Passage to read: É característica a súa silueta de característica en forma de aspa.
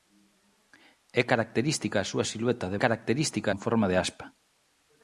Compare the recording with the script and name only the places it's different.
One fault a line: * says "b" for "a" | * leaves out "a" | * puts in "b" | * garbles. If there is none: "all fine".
all fine